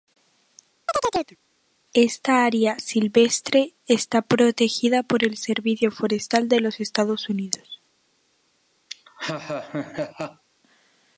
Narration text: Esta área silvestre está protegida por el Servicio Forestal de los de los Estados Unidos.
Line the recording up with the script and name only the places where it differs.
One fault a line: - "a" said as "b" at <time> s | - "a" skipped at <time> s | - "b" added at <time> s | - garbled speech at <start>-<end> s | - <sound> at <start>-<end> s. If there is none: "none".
- chirp at 0.9-1.4 s
- "de los" skipped at 6.8 s
- laugh at 8.9-10.4 s